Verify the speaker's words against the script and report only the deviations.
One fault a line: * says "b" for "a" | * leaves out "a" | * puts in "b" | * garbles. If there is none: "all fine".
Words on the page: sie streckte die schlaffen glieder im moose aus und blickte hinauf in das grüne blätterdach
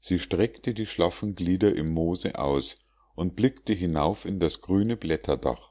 all fine